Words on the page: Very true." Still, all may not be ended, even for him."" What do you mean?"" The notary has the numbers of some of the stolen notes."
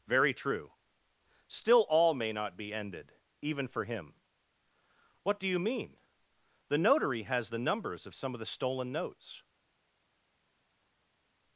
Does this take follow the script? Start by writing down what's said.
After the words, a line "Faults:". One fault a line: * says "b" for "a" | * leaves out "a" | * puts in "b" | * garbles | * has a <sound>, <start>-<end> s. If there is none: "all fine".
Very true." Still, all may not be ended, even for him."" What do you mean?"" The notary has the numbers of some of the stolen notes."
Faults:
all fine